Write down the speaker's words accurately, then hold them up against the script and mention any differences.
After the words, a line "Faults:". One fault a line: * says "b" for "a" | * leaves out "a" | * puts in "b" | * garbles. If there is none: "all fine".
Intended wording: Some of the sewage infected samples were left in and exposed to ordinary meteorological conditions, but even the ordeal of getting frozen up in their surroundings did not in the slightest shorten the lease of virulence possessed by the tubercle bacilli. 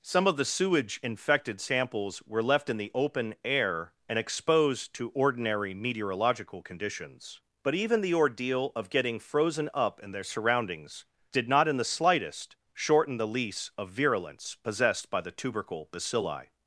Some of the sewage infected samples were left in the open air and exposed to ordinary meteorological conditions, but even the ordeal of getting frozen up in their surroundings did not in the slightest shorten the lease of virulence possessed by the tubercle bacilli.
Faults:
* puts in "the open air"